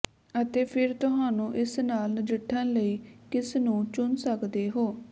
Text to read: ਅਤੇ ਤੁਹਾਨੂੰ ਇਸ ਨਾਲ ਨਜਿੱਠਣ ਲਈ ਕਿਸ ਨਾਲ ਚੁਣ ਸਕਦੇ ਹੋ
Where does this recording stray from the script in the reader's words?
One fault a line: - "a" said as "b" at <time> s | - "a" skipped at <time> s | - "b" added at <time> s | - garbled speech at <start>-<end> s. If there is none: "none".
- "ਫਿਰ" added at 0.6 s
- "ਨਾਲ" said as "ਨੂੰ" at 3.6 s